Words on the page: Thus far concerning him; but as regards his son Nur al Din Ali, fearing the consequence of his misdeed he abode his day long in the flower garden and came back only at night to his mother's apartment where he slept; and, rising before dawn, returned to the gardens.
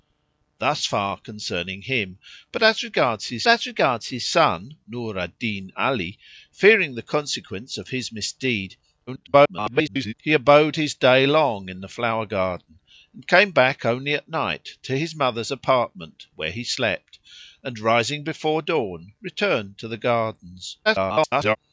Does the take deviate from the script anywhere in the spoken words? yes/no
yes